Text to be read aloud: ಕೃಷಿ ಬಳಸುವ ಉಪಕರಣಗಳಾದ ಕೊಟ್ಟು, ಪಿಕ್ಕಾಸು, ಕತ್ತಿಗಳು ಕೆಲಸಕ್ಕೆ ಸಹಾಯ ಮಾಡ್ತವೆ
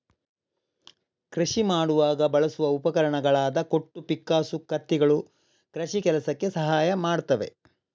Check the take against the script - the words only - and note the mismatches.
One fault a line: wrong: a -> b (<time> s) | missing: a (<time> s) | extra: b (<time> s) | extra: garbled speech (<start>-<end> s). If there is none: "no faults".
extra: ಮಾಡುವಾಗ (1.6 s)
extra: ಕೃಷಿ (5.8 s)